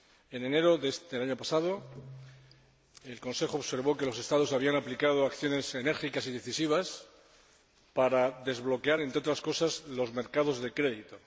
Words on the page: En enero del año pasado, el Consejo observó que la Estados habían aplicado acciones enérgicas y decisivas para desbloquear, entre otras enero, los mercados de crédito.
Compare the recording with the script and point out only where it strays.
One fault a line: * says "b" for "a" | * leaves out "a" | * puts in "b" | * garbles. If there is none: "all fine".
* says "los" for "la"
* says "cosas" for "enero"